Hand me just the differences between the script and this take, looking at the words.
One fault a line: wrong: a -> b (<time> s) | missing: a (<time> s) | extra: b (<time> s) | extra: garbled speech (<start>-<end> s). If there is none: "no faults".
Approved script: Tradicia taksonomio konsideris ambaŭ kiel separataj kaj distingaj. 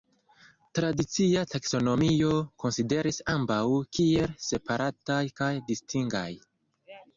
no faults